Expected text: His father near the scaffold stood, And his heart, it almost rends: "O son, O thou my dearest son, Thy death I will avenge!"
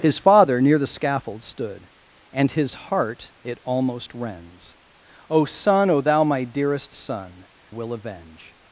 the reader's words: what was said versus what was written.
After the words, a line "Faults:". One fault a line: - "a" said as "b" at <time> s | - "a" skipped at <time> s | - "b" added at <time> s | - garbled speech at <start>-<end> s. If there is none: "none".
His father near the scaffold stood, And his heart, it almost rends: "O son, O thou my dearest son, Will avenge!"
Faults:
- "Thy death I" skipped at 7.5 s